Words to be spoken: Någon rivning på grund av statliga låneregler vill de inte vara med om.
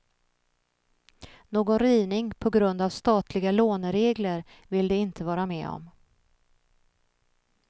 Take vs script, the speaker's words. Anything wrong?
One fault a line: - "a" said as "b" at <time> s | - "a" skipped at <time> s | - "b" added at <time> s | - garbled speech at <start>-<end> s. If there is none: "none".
none